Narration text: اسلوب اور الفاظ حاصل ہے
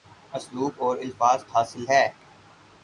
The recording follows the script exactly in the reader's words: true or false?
true